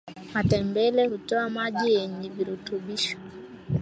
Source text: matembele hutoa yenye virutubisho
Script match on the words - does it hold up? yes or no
no